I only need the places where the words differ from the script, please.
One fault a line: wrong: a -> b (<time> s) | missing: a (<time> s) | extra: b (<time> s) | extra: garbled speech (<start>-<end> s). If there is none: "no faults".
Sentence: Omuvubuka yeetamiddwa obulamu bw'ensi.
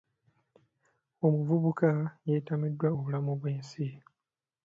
no faults